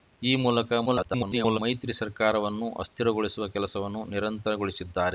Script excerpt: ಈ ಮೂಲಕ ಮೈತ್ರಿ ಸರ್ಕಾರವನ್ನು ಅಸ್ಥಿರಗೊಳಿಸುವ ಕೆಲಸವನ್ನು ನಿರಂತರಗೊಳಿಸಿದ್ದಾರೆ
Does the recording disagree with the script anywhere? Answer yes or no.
yes